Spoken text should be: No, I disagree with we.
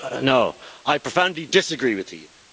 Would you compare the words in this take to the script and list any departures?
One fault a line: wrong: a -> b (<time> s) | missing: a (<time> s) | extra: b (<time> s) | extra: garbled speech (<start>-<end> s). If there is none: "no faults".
extra: profoundly (0.9 s)
wrong: we -> you (2.1 s)